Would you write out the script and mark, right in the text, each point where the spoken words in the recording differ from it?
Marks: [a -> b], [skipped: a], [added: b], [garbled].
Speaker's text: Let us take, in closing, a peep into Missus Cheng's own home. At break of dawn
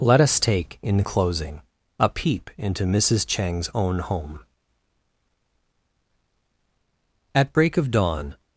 Let us take, in closing, a peep into Missus Cheng's own home. At break of dawn